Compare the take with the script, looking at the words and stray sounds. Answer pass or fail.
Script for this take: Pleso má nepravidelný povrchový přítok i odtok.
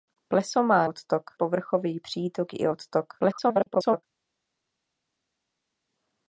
fail